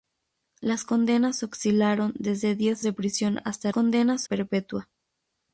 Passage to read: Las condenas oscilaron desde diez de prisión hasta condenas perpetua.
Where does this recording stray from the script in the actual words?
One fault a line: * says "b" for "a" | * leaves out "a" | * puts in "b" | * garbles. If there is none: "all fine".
all fine